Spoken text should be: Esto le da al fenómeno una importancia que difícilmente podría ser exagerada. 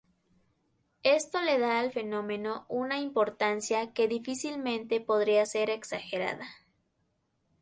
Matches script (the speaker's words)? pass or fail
pass